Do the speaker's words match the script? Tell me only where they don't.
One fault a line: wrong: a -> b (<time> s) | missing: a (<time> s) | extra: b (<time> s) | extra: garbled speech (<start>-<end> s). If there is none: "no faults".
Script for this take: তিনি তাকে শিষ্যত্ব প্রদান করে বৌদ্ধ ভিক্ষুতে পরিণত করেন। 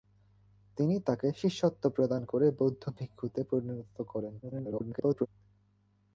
extra: garbled speech (4.4-5.3 s)